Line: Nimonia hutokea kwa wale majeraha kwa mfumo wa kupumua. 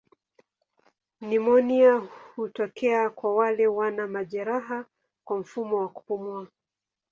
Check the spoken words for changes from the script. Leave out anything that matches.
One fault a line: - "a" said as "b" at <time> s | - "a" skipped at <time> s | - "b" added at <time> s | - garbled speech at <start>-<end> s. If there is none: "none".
- "wana" added at 3.7 s